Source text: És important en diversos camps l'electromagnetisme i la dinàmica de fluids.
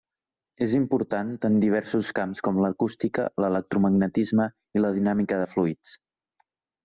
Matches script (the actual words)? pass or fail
fail